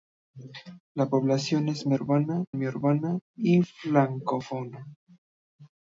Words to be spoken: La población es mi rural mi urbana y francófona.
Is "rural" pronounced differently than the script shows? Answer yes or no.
yes